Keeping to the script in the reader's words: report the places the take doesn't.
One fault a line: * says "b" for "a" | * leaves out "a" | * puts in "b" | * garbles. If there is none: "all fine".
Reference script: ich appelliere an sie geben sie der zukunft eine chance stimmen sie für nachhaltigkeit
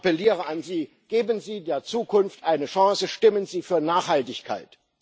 all fine